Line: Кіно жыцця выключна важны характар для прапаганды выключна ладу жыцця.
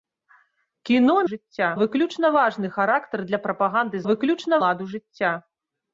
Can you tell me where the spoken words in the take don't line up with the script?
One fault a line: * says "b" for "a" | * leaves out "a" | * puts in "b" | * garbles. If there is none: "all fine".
all fine